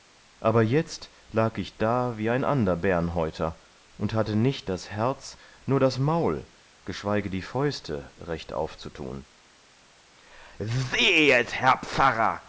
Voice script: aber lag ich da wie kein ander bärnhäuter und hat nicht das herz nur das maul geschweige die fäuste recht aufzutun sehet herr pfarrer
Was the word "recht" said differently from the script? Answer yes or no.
no